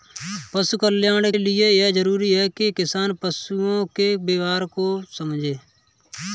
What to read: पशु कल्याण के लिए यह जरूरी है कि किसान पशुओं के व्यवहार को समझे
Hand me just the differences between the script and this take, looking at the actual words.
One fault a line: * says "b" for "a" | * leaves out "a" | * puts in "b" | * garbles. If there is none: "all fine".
* leaves out "के"